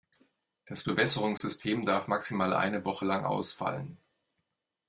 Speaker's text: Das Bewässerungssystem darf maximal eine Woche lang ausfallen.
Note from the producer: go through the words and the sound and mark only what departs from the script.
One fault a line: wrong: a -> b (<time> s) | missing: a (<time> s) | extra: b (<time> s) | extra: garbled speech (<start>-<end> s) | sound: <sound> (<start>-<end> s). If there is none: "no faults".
sound: dropout (1.4-1.4 s)